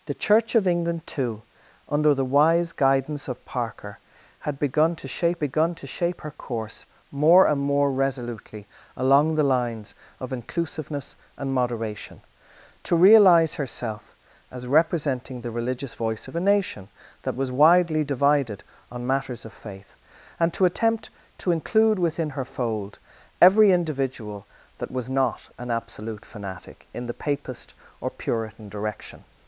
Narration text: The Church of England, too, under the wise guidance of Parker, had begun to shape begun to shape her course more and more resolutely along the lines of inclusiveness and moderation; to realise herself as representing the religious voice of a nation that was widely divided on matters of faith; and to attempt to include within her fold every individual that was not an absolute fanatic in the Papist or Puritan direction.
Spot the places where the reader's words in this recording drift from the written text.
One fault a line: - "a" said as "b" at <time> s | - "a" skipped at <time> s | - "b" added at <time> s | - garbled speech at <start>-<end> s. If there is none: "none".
none